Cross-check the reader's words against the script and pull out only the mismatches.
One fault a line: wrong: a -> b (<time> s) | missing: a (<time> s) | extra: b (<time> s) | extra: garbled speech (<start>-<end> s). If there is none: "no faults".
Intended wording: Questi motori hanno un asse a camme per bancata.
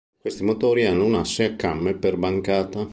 no faults